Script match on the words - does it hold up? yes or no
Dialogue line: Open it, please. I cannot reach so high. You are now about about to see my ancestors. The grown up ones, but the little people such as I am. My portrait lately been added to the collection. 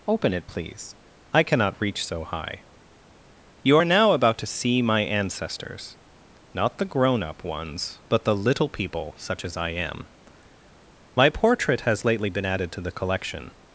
no